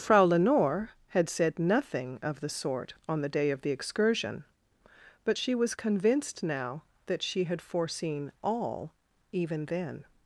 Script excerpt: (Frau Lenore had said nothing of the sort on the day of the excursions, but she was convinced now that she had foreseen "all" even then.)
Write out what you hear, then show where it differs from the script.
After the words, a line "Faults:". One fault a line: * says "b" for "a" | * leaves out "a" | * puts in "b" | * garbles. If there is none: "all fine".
(Frau Lenore had said nothing of the sort on the day of the excursion, but she was convinced now that she had foreseen "all" even then.)
Faults:
* says "excursion" for "excursions"